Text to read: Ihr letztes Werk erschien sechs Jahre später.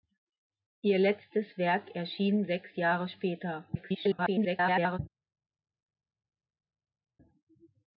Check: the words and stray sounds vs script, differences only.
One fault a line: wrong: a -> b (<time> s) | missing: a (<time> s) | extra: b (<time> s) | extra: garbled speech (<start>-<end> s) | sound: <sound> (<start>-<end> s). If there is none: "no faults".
extra: garbled speech (3.7-5.0 s)